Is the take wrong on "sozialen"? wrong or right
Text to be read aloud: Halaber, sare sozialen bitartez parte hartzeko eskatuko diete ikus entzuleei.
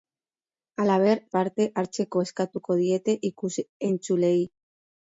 wrong